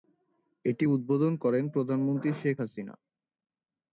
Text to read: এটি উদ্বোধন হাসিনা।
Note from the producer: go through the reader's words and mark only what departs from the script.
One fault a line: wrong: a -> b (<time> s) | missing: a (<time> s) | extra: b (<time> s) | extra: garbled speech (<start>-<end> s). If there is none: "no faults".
extra: করেন প্রধানমন্ত্রী শেখ (1.4 s)